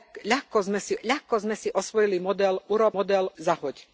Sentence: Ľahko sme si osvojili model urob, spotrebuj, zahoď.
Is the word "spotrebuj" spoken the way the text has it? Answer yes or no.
no